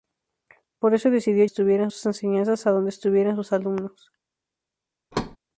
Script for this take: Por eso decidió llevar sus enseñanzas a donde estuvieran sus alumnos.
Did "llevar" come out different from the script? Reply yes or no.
yes